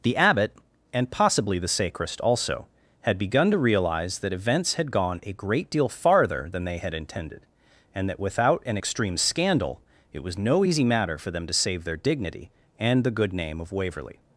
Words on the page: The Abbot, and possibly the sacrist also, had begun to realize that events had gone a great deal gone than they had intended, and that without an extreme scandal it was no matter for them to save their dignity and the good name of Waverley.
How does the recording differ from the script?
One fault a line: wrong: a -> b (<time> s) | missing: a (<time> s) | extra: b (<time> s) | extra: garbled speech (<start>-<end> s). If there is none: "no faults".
wrong: gone -> farther (5.9 s)
extra: easy (10.6 s)